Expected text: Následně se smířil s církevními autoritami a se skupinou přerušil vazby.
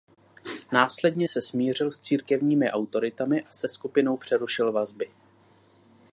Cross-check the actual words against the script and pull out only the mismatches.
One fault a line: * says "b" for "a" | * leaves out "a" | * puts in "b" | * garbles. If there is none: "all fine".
all fine